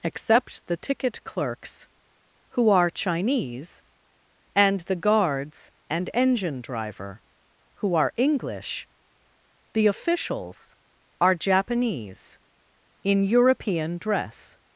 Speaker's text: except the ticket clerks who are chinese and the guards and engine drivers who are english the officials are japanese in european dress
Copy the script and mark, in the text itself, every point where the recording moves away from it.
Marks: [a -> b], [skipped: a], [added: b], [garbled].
except the ticket clerks who are chinese and the guards and engine [drivers -> driver] who are english the officials are japanese in european dress